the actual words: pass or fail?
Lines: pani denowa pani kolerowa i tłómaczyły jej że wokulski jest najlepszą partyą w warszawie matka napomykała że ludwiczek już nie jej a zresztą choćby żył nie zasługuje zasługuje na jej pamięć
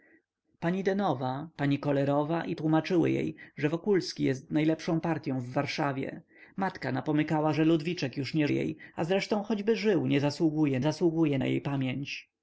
pass